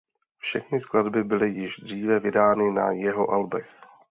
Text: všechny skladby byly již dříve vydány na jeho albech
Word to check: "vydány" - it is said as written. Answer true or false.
true